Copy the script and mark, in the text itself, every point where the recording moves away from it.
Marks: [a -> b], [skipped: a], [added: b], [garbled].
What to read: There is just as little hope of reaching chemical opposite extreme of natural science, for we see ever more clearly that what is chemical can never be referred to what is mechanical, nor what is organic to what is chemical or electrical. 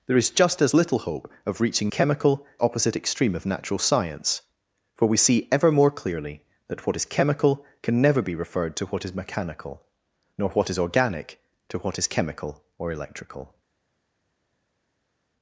There is just as little hope of reaching chemical opposite extreme of natural science, for we see ever more clearly that what is chemical can never be referred to what is mechanical, nor what is organic to what is chemical or electrical.